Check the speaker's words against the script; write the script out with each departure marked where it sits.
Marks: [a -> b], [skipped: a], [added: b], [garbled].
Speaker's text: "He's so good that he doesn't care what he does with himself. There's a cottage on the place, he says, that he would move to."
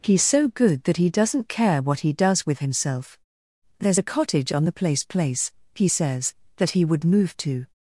"He's so good that he doesn't care what he does with himself. There's a cottage on the place, [added: place] he says, that he would move to."